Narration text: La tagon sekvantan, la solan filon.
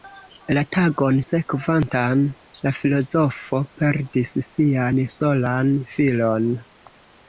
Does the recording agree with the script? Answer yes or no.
no